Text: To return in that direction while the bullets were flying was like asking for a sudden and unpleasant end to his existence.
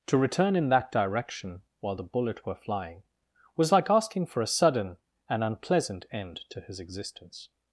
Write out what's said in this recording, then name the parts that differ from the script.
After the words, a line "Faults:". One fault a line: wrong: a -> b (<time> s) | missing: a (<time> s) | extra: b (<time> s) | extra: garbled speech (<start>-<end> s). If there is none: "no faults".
To return in that direction while the bullet were flying was like asking for a sudden and unpleasant end to his existence.
Faults:
wrong: bullets -> bullet (2.0 s)